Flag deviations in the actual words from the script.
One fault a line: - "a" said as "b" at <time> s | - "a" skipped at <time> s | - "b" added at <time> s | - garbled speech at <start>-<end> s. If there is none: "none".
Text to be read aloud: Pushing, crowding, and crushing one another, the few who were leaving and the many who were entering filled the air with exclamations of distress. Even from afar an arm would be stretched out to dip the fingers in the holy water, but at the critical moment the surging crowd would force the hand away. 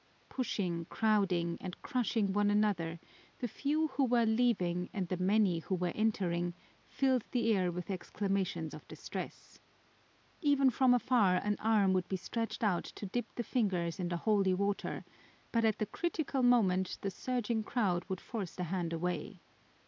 none